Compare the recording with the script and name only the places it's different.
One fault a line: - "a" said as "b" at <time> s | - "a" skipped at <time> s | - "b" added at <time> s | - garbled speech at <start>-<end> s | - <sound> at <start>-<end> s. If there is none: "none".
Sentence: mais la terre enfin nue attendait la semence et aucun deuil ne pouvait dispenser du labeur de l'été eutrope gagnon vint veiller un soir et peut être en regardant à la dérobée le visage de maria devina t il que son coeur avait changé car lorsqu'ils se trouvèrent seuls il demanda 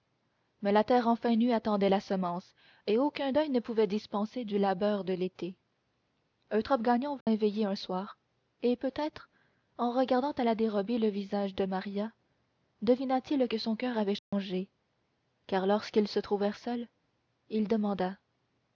- dropout at 7.2-7.3 s
- dropout at 14.2-14.3 s